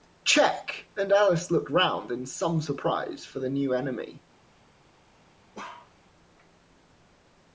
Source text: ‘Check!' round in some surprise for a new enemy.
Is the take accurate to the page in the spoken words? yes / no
no